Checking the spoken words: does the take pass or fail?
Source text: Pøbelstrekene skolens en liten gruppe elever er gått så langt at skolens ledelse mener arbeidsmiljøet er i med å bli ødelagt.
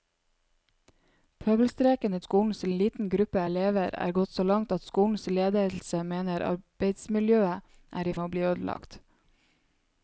pass